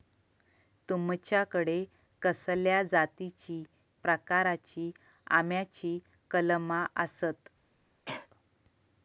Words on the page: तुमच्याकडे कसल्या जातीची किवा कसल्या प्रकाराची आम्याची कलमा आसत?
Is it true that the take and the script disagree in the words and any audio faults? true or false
true